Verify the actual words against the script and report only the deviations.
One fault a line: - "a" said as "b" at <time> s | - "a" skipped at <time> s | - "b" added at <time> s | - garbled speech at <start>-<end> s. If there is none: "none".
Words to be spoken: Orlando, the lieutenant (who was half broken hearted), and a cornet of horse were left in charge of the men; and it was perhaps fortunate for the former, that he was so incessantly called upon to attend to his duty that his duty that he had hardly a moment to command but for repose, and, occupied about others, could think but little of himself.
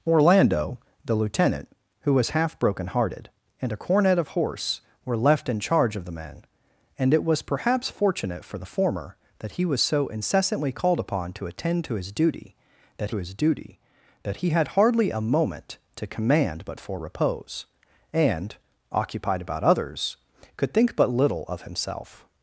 none